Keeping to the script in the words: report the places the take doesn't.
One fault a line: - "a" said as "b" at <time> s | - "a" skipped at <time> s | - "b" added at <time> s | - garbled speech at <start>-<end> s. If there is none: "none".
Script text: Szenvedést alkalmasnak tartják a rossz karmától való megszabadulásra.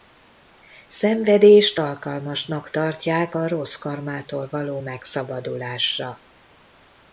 none